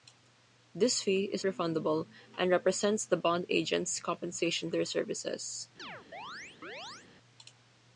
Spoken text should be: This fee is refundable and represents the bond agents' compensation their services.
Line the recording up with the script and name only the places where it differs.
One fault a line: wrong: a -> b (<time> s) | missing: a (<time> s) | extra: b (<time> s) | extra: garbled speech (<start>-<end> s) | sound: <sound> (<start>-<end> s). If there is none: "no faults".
sound: chirp (5.8-7.1 s)